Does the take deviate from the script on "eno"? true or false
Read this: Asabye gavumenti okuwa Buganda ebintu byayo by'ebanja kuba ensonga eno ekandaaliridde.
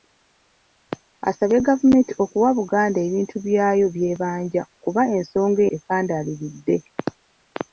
true